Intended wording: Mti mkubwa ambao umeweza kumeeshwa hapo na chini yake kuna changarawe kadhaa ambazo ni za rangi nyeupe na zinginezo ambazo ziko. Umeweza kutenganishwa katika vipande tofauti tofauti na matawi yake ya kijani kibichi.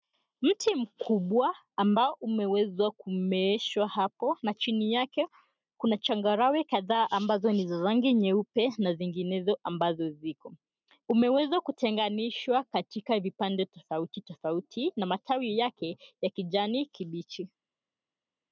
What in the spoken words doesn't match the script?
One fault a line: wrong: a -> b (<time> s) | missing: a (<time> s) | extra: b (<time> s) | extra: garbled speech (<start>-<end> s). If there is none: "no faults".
no faults